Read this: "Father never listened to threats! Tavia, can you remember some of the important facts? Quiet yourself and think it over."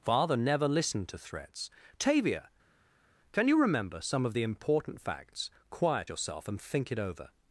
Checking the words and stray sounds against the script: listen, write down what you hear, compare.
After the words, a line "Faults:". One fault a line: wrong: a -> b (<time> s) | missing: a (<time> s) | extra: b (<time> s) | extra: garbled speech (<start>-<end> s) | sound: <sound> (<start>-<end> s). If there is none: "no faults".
"Father never listened to threats! Tavia, can you remember some of the important facts? Quiet yourself and think it over."
Faults:
no faults